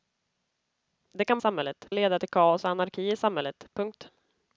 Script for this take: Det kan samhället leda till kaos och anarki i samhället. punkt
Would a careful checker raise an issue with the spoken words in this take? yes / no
no